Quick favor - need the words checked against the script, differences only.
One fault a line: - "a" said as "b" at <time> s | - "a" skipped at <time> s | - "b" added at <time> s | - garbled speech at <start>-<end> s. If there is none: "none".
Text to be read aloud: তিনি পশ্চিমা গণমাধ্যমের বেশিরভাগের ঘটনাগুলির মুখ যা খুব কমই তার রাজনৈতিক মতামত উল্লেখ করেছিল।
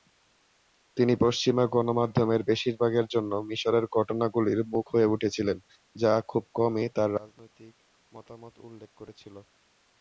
- "জন্য মিশরের" added at 3.1 s
- "হয়ে উঠেছিলেন" added at 4.9 s